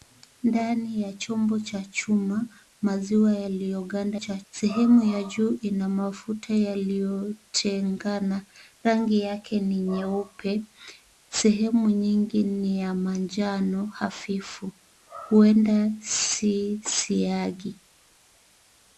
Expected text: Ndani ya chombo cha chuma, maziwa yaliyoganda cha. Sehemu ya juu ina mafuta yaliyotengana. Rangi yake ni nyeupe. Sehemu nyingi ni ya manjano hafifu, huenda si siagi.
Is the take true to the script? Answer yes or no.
yes